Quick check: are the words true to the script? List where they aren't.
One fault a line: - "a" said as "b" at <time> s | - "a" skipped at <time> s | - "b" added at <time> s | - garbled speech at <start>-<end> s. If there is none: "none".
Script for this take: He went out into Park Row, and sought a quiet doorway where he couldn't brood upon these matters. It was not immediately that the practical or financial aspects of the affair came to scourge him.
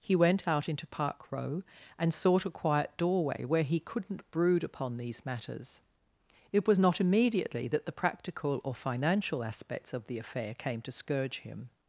none